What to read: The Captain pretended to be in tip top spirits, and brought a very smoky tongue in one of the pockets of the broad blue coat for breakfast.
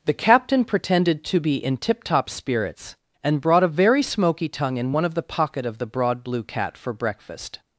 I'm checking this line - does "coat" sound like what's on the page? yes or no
no